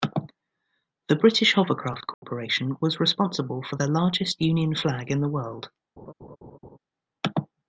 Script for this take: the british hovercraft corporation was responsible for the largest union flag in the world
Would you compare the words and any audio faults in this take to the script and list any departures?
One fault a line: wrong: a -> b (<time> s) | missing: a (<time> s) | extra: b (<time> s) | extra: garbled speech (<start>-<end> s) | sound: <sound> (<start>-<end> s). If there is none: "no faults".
sound: dropout (2.1-2.2 s)
sound: laugh (6.0-6.8 s)